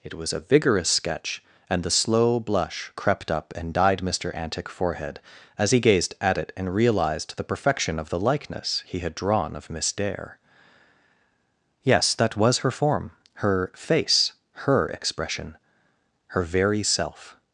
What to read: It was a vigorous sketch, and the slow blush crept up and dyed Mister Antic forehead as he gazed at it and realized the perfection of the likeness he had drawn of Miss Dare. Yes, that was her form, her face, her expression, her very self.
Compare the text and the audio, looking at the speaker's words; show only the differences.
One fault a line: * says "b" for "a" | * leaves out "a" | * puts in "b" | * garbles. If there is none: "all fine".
all fine